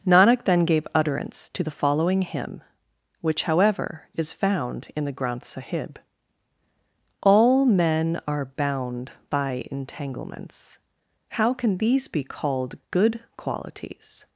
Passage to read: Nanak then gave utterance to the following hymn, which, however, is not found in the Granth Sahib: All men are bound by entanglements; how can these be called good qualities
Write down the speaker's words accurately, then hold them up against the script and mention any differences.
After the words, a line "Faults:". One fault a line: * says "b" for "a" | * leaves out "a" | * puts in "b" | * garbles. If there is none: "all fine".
Nanak then gave utterance to the following hymn, which, however, is found in the Granth Sahib: All men are bound by entanglements; how can these be called good qualities
Faults:
* leaves out "not"